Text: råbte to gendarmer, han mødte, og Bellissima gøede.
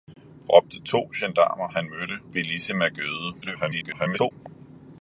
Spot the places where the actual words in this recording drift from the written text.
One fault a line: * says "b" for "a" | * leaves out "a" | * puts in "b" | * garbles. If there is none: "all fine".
* leaves out "og"
* garbles